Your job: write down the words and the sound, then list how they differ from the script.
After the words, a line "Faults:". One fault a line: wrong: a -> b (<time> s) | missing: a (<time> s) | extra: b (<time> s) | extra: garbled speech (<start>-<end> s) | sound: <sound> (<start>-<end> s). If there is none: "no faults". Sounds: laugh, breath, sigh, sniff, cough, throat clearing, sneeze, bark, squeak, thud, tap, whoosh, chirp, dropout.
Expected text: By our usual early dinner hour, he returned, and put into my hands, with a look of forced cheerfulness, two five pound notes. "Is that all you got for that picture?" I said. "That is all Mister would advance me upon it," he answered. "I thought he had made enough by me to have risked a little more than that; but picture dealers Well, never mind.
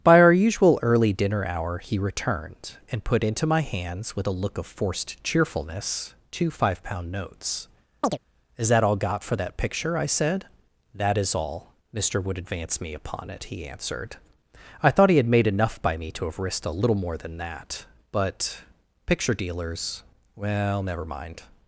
By our usual early dinner hour, he returned, and put into my hands, with a look of forced cheerfulness, two five pound notes. "Is that all got for that picture?" I said. "That is all Mister would advance me upon it," he answered. "I thought he had made enough by me to have risked a little more than that; but picture dealers Well, never mind.
Faults:
sound: chirp (8.0-8.2 s)
missing: you (9.0 s)